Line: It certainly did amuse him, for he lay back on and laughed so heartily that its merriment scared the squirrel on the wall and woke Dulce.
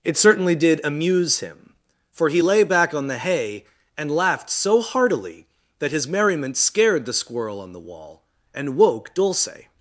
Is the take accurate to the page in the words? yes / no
no